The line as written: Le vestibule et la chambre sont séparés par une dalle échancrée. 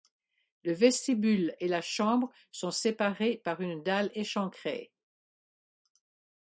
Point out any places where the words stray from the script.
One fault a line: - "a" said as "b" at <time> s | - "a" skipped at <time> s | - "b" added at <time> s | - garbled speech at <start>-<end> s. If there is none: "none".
none